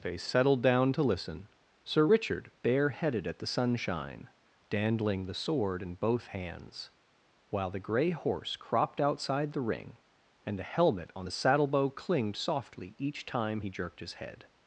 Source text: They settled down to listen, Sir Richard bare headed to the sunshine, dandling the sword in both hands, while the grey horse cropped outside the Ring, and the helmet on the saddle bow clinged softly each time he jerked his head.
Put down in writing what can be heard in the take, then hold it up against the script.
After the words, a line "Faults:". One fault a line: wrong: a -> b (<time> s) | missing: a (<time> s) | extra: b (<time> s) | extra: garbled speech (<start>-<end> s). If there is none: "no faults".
They settled down to listen, Sir Richard bare headed at the sunshine, dandling the sword in both hands, while the grey horse cropped outside the Ring, and the helmet on the saddle bow clinged softly each time he jerked his head.
Faults:
wrong: to -> at (3.3 s)